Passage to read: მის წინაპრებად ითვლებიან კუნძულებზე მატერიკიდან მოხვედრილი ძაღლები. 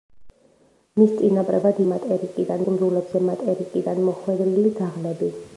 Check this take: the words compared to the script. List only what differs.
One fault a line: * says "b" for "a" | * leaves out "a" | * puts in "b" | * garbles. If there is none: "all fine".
* says "მატერიკიდან" for "ითვლებიან"